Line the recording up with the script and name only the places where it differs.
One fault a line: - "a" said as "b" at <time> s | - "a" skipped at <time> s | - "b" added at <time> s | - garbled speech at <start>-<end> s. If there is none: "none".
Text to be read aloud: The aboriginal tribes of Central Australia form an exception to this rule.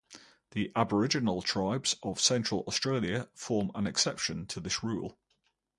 none